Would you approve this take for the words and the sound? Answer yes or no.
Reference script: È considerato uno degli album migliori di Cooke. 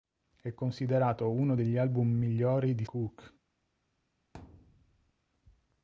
no